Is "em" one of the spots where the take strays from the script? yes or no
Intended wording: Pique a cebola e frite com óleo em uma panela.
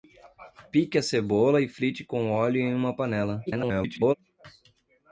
no